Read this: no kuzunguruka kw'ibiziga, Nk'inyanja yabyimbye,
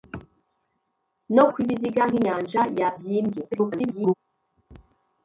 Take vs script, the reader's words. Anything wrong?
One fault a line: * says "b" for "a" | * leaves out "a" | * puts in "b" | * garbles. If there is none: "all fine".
* leaves out "kuzunguruka"
* garbles